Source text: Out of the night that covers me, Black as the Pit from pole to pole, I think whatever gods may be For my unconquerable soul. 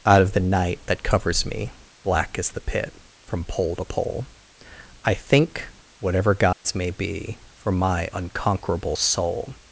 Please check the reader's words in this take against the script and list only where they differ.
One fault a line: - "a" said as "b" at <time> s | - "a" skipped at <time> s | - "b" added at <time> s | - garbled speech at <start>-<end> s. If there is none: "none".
none